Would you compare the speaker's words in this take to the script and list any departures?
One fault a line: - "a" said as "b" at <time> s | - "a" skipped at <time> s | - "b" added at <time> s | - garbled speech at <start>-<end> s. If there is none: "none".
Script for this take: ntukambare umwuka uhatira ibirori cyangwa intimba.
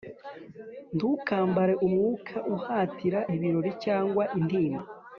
none